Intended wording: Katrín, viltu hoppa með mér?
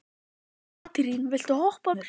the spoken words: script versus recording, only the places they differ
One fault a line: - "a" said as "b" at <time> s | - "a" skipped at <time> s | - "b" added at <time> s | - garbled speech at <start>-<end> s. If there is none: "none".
- "með" skipped at 1.9 s